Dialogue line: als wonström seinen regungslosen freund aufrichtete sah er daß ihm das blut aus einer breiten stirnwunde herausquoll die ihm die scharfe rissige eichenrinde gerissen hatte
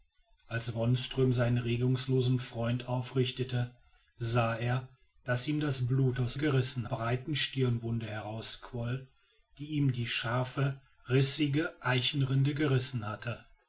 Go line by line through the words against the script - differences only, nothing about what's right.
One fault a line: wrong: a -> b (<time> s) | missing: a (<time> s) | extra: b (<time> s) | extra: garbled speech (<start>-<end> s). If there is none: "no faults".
wrong: einer -> gerissen (6.4 s)